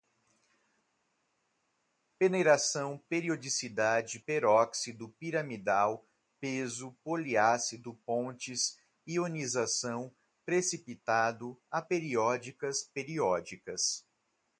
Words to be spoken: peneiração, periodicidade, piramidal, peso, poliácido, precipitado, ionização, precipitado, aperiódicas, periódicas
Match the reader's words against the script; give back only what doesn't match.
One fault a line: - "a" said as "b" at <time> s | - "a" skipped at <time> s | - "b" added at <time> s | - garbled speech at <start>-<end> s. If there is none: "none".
- "peróxido" added at 4.2 s
- "precipitado" said as "pontes" at 8.0 s